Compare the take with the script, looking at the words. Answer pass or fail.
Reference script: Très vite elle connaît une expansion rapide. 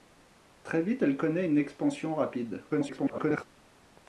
fail